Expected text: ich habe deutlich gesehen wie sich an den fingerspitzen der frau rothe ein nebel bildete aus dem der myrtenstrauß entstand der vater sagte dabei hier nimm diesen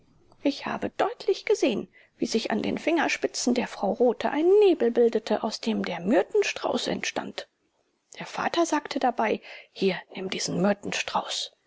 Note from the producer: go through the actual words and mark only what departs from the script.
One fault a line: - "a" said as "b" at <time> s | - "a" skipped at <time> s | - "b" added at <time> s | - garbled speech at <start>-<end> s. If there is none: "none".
none